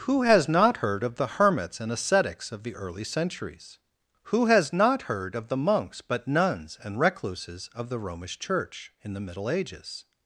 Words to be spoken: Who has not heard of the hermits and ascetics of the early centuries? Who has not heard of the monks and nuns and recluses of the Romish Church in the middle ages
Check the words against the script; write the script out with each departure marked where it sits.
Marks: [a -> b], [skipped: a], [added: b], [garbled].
Who has not heard of the hermits and ascetics of the early centuries? Who has not heard of the monks [and -> but] nuns and recluses of the Romish Church in the middle ages